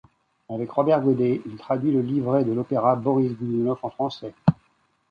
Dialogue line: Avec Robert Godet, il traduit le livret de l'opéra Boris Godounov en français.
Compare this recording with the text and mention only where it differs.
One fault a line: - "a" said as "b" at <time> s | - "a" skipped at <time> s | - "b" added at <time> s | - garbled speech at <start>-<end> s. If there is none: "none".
none